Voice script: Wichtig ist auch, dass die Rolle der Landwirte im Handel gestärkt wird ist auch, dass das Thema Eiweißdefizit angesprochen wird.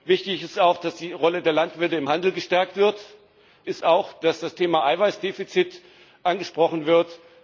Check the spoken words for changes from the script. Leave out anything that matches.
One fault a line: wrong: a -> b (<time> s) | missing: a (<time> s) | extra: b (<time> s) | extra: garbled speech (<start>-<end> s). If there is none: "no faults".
no faults